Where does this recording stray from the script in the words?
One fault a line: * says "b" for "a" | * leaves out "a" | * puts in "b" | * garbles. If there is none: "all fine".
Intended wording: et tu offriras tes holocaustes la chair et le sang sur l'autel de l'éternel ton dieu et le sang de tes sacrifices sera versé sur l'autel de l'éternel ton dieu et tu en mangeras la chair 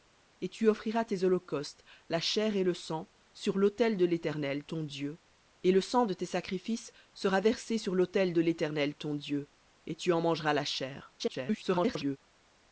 * garbles